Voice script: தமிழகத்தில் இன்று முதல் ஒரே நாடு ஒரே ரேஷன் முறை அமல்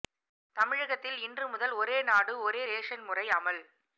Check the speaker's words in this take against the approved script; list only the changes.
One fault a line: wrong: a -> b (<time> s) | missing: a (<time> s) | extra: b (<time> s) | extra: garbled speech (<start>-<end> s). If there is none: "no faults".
no faults